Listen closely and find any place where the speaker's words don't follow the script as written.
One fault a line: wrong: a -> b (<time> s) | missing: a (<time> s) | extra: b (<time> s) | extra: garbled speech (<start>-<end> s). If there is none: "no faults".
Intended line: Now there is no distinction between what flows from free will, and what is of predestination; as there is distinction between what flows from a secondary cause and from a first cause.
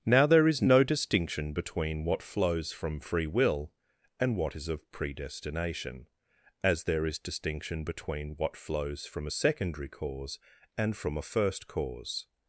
no faults